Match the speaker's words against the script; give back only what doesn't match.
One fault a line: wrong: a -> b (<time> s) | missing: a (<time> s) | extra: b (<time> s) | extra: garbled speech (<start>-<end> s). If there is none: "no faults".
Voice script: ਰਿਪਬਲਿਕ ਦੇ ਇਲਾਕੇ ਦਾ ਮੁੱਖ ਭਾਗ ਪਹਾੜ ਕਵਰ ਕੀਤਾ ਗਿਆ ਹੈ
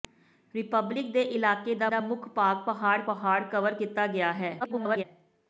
extra: ਦਾ (1.9 s)
extra: ਪਹਾੜ (3.1 s)
extra: garbled speech (4.6-5.0 s)